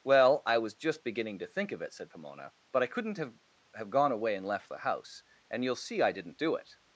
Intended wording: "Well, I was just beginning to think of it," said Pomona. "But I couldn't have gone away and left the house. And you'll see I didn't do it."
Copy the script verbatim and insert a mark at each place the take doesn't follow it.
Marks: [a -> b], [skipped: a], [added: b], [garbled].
"Well, I was just beginning to think of it," said Pomona. "But I couldn't have [added: have] gone away and left the house. And you'll see I didn't do it."